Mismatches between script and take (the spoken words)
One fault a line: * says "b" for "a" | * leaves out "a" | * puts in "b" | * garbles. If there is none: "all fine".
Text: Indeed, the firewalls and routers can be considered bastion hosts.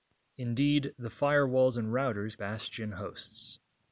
* leaves out "can be considered"